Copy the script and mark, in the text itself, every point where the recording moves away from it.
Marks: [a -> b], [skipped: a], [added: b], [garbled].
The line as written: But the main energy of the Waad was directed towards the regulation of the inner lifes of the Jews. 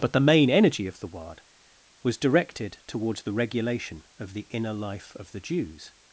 But the main energy of the Waad was directed towards the regulation of the inner [lifes -> life] of the Jews.